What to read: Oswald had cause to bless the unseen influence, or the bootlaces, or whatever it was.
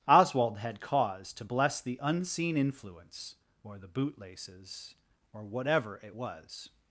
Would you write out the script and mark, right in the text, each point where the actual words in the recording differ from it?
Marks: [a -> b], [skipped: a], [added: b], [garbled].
Oswald had cause to bless the unseen influence, or the bootlaces, or whatever it was.